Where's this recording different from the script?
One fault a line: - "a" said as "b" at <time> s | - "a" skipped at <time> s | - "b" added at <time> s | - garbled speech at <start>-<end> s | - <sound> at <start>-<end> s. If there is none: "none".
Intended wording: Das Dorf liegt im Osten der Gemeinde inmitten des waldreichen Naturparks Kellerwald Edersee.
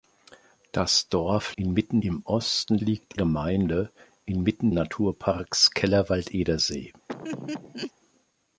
- "liegt" said as "inmitten" at 1.6 s
- "der" said as "liegt" at 2.8 s
- "des waldreichen" skipped at 4.7 s
- laugh at 7.1-7.9 s